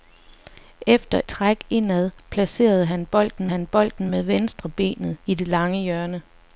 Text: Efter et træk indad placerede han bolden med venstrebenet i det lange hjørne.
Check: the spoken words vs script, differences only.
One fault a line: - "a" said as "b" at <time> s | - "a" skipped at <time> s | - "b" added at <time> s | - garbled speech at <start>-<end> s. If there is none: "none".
- "et" skipped at 1.2 s
- "han bolden" added at 3.5 s